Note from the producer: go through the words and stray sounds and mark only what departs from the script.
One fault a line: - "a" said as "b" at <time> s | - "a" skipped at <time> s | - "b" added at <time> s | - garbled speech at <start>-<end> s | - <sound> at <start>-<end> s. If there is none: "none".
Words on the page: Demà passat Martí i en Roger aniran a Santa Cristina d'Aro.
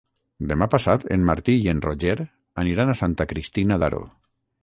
- "en" added at 1.1 s